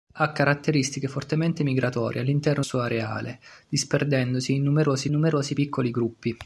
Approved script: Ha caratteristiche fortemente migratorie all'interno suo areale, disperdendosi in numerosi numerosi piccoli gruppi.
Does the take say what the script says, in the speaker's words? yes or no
yes